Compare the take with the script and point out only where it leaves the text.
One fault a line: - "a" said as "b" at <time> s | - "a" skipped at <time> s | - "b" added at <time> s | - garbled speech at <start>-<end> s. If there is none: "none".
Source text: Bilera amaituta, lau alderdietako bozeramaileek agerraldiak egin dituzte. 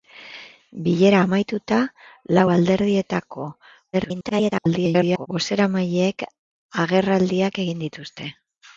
- garbled speech at 3.9-5.3 s